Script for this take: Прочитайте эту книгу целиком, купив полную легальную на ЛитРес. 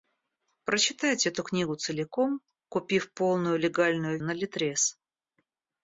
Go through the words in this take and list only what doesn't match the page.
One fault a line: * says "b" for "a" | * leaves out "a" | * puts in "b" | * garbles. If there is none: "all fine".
all fine